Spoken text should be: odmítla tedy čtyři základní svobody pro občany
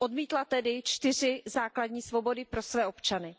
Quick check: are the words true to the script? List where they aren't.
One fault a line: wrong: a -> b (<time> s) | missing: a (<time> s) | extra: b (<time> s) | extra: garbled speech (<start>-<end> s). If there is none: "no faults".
extra: své (2.6 s)